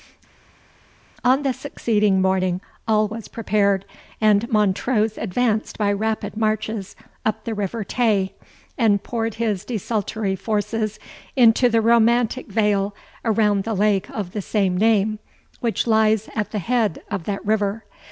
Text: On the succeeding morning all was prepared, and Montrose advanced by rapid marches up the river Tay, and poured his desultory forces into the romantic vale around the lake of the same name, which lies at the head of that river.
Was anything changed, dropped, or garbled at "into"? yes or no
no